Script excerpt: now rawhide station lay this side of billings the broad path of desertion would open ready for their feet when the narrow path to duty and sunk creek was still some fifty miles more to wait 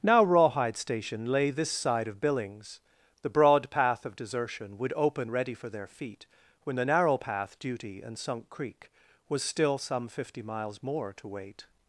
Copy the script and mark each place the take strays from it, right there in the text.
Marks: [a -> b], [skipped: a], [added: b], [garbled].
now rawhide station lay this side of billings the broad path of desertion would open ready for their feet when the narrow path [skipped: to] duty and sunk creek was still some fifty miles more to wait